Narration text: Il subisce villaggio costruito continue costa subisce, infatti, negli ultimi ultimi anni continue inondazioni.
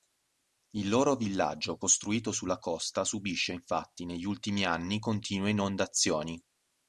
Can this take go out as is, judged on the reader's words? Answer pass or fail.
fail